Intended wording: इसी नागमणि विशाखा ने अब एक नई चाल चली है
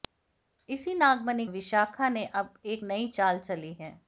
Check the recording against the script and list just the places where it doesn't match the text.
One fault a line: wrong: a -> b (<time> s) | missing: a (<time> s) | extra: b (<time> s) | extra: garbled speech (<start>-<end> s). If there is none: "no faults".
no faults